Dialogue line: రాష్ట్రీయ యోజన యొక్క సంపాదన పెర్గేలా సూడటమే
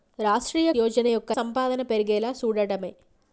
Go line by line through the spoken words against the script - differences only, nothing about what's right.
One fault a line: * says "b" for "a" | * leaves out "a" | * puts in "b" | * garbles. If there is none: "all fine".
all fine